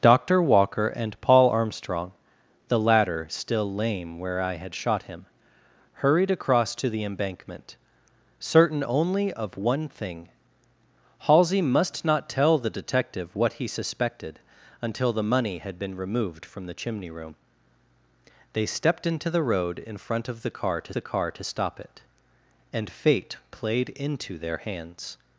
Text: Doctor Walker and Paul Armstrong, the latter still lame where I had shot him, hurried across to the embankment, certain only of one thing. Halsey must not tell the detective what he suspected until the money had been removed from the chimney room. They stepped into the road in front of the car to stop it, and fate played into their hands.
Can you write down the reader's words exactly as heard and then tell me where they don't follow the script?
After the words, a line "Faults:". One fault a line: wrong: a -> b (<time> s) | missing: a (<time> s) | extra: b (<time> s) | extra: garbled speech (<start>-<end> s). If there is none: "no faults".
Doctor Walker and Paul Armstrong, the latter still lame where I had shot him, hurried across to the embankment, certain only of one thing. Halsey must not tell the detective what he suspected until the money had been removed from the chimney room. They stepped into the road in front of the car to the car to stop it, and fate played into their hands.
Faults:
extra: the car to (20.9 s)